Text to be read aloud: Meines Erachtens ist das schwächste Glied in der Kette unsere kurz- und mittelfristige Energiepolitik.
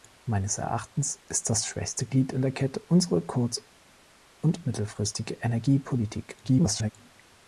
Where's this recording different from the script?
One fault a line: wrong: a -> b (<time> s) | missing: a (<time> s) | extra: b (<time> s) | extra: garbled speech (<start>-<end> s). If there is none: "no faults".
extra: garbled speech (6.4-6.9 s)